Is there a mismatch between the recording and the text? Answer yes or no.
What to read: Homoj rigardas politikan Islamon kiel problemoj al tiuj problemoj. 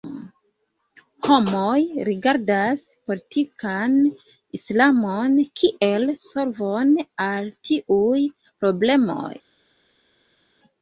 yes